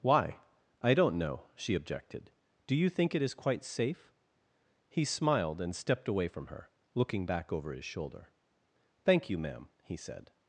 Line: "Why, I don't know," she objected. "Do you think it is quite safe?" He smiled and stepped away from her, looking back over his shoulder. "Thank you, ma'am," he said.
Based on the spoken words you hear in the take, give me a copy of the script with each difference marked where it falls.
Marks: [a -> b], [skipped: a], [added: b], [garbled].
"Why, I don't know," she objected. "Do you think it is quite safe?" He smiled and stepped away from her, looking back over his shoulder. "Thank you, ma'am," he said.